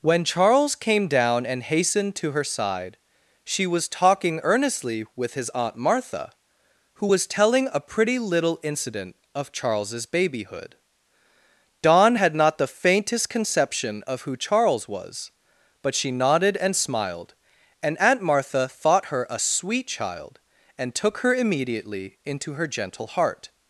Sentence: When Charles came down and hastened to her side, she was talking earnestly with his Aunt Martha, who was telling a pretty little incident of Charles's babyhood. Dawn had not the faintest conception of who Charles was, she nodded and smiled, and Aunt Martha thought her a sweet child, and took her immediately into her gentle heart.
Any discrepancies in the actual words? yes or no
yes